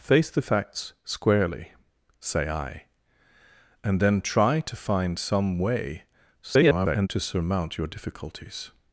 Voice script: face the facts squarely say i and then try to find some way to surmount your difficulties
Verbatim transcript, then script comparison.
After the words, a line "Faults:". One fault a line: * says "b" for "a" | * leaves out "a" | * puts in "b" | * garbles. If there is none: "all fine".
face the facts squarely say i and then try to find some way [garbled] to surmount your difficulties
Faults:
* garbles